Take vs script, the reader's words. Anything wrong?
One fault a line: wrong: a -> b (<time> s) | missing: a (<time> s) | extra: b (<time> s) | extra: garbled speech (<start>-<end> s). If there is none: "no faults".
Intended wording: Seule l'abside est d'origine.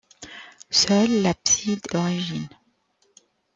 missing: est (1.9 s)